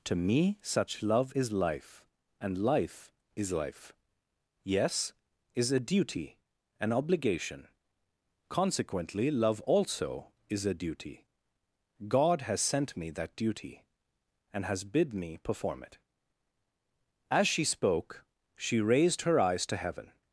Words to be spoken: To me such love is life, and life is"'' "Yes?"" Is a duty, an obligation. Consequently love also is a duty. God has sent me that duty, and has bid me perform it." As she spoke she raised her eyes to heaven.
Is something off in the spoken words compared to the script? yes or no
yes